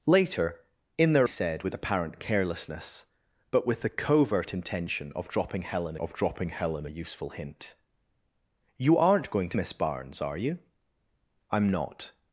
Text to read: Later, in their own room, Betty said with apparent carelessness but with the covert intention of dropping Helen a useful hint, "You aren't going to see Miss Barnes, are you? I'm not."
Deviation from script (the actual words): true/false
true